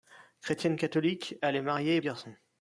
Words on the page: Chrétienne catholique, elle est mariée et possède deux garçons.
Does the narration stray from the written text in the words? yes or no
yes